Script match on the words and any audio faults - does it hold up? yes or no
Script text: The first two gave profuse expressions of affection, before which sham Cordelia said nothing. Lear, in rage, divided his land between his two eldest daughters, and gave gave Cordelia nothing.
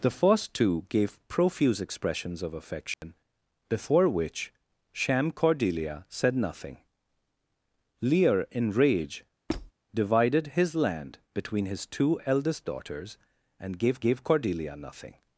no